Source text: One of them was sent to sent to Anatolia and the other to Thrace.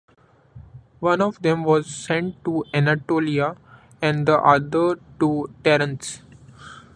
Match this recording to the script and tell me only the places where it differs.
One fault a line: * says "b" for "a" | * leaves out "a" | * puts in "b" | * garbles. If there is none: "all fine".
* leaves out "sent to"